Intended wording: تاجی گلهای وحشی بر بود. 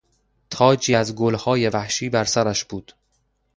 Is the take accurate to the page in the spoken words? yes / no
no